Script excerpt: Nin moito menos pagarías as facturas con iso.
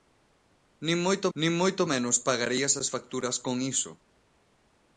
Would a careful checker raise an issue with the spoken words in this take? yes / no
yes